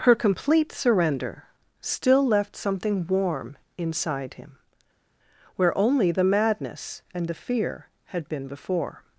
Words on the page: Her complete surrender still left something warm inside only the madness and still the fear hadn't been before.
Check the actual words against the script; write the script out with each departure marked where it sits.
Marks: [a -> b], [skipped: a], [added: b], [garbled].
Her complete surrender still left something warm inside [added: him where] only the madness and [skipped: still] the fear [hadn't -> had] been before.